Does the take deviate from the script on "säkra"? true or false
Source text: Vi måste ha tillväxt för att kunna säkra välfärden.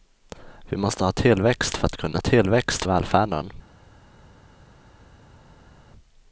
true